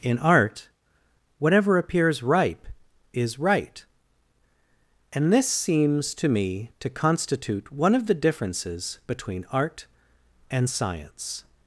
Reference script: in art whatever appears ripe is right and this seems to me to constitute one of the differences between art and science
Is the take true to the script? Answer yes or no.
yes